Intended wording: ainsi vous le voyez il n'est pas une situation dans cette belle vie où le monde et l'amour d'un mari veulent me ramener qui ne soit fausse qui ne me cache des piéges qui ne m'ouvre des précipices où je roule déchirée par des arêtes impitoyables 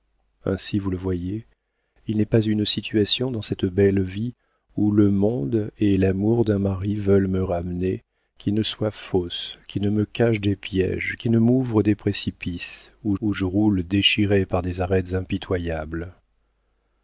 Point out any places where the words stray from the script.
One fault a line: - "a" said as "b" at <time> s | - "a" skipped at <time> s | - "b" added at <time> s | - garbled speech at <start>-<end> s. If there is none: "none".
- "où" added at 13.2 s